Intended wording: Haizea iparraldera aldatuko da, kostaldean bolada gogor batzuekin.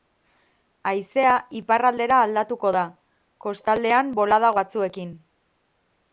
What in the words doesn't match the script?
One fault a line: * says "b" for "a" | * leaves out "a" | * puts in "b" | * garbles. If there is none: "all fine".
* leaves out "gogor"